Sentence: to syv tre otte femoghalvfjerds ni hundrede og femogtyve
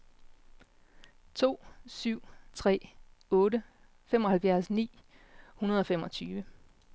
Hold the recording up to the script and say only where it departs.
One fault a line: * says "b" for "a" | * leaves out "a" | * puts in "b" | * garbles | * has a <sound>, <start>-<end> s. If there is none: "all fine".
all fine